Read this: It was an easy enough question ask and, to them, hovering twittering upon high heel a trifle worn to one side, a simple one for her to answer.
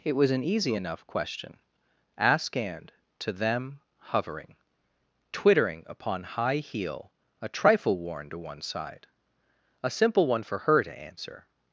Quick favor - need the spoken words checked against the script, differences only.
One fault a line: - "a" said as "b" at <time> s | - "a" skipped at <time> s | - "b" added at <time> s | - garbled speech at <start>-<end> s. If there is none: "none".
none